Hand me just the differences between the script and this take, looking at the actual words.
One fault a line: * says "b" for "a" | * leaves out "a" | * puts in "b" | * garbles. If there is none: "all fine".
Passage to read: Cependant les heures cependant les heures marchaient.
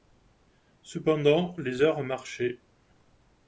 * leaves out "cependant les heures"